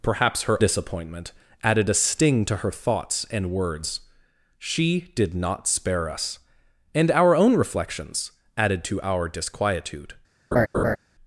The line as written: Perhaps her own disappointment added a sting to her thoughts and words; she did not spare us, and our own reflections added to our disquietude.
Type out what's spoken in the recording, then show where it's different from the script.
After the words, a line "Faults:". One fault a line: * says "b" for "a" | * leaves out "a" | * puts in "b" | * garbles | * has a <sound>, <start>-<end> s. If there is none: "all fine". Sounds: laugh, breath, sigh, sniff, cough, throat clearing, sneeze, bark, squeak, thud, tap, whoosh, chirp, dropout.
Perhaps her disappointment added a sting to her thoughts and words; she did not spare us, and our own reflections added to our disquietude.
Faults:
* leaves out "own"
* has a laugh, 10.5-11.0 s